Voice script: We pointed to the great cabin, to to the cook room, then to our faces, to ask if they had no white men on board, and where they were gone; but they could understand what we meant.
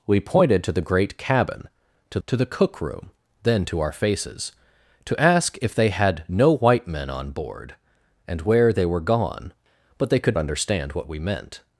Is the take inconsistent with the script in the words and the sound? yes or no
no